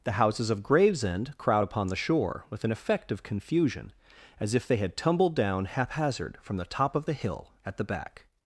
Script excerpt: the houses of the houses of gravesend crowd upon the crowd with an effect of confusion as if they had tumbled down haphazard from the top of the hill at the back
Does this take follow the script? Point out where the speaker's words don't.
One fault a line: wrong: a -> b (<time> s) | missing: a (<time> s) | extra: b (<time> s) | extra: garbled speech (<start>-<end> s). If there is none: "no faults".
missing: the houses of (0.6 s)
wrong: crowd -> shore (2.0 s)